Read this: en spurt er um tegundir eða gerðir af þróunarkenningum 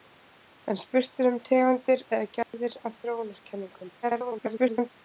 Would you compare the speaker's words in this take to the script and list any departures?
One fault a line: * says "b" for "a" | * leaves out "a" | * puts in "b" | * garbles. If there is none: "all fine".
* garbles